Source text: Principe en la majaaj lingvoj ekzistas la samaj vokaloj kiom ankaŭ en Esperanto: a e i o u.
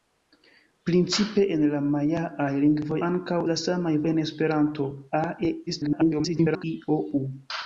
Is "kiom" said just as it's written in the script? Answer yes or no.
no